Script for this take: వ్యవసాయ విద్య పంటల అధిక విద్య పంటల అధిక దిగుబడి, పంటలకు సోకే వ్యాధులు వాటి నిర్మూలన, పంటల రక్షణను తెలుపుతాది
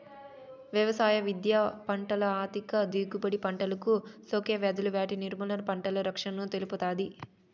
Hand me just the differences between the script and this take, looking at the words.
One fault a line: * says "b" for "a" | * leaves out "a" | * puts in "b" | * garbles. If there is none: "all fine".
* leaves out "విద్య పంటల అధిక"